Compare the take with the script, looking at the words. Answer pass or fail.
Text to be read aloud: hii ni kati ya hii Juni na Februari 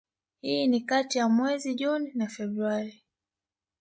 fail